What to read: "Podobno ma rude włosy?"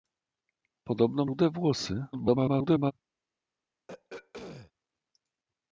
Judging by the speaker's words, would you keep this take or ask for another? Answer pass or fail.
fail